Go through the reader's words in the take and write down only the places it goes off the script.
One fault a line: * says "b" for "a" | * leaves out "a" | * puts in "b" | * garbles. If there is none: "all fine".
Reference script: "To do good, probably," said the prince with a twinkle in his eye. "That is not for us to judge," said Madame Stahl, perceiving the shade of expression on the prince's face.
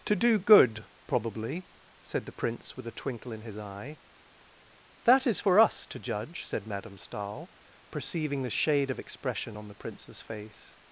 * leaves out "not"